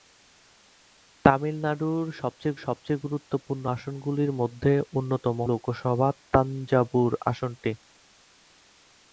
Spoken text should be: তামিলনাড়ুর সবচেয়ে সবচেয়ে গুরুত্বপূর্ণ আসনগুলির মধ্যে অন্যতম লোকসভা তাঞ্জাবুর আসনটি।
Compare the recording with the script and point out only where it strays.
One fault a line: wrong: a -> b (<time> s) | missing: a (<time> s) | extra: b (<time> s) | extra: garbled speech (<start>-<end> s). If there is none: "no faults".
no faults